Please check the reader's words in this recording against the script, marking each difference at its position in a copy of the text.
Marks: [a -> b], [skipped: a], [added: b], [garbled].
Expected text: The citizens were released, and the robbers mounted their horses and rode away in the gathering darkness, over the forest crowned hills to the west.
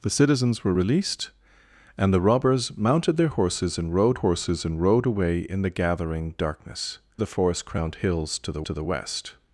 The citizens were released, and the robbers mounted their horses and rode [added: horses and rode] away in the gathering darkness, [skipped: over] the forest crowned hills to the [added: to the] west.